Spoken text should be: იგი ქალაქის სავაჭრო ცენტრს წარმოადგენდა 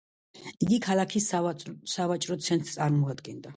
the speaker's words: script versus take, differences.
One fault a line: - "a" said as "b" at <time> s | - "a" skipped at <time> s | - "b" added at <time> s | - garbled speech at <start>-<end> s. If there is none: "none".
none